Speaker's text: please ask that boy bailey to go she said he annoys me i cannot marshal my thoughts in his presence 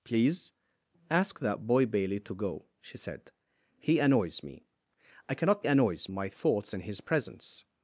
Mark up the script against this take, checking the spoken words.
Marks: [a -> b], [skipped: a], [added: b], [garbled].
please ask that boy bailey to go she said he annoys me i cannot [marshal -> annoys] my thoughts in his presence